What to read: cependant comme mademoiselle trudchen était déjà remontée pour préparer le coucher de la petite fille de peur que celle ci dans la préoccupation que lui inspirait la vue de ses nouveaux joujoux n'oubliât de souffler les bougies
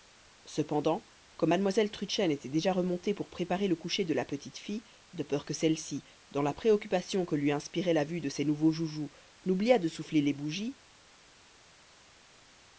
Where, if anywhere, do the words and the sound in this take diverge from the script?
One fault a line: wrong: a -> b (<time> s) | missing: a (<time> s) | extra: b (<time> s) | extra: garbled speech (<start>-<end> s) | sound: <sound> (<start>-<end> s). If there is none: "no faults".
no faults